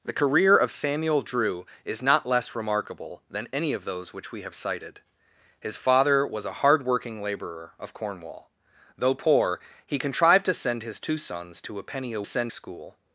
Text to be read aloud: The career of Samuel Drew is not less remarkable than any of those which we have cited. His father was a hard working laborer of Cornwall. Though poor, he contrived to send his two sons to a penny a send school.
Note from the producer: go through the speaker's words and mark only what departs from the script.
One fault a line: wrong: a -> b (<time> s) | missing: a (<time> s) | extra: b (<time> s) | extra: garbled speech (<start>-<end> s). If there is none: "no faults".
no faults